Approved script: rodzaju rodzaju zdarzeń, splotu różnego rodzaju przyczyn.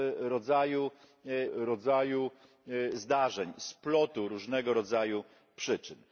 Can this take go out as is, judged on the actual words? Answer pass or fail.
pass